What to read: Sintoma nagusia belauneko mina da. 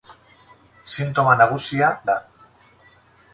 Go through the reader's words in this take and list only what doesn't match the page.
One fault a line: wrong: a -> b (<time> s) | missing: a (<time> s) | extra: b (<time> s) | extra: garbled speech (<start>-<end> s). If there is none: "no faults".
missing: belauneko mina (1.9 s)